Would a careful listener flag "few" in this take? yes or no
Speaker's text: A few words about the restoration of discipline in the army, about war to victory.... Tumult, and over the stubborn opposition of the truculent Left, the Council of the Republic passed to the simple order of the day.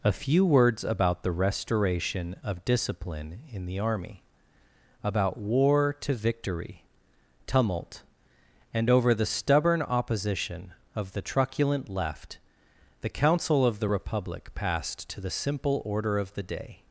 no